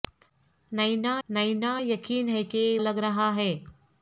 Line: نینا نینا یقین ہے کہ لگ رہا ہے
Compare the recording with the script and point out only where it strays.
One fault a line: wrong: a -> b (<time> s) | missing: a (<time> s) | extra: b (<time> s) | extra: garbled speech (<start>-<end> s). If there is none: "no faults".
no faults